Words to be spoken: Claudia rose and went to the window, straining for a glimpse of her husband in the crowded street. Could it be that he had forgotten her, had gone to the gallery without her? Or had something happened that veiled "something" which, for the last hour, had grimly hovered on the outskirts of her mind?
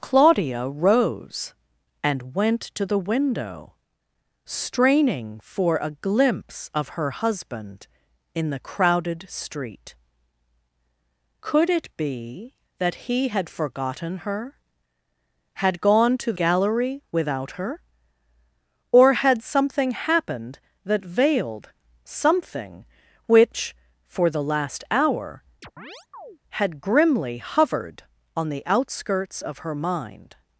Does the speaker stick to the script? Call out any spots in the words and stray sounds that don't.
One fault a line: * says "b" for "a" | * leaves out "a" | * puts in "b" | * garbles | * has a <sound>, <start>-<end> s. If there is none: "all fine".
* leaves out "the"
* has a chirp, 25.6-26.4 s